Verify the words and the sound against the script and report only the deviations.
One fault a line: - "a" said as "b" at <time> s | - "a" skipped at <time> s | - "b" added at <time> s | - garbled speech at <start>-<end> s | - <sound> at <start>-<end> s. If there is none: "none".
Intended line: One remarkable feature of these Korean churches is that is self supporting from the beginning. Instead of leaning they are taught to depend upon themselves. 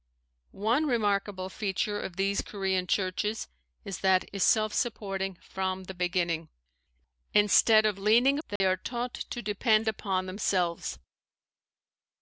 - dropout at 8.6-8.6 s